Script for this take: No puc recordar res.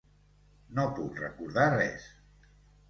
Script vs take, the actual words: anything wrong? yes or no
no